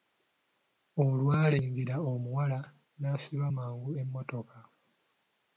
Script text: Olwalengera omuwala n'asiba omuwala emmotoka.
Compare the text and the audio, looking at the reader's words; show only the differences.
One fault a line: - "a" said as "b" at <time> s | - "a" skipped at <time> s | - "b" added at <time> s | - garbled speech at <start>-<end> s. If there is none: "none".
- "omuwala" said as "mangu" at 3.6 s